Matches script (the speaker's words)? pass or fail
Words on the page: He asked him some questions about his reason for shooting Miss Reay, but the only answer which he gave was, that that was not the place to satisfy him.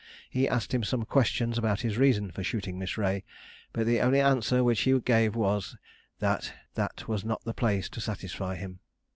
pass